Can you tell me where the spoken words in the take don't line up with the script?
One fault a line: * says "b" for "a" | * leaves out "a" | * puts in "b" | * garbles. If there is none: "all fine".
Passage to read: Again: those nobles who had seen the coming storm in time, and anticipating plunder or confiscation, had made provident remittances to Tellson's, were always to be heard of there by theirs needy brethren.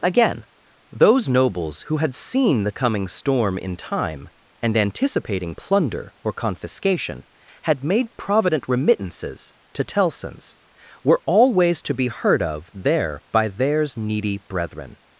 all fine